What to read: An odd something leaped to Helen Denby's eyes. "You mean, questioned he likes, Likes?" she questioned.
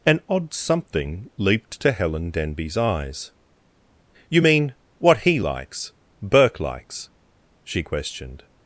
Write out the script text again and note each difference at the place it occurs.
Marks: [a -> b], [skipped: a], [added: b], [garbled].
An odd something leaped to Helen Denby's eyes. "You mean, [questioned -> what] he likes, [added: Burke] Likes?" she questioned.